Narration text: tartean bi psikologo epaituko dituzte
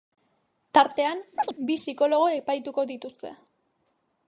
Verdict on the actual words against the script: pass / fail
pass